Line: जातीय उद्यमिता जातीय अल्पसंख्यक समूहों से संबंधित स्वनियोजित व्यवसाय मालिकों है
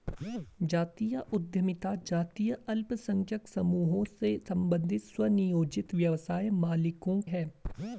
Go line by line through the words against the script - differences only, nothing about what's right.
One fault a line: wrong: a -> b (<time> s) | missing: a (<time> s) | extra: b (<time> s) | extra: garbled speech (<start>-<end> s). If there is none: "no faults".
no faults